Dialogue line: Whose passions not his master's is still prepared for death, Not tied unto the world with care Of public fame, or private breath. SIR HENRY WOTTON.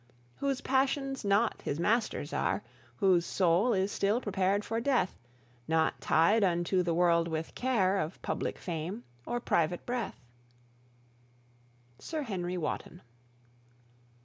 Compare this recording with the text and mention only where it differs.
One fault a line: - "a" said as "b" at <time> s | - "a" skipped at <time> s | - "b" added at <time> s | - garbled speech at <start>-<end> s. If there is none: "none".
- "are Whose soul" added at 2.3 s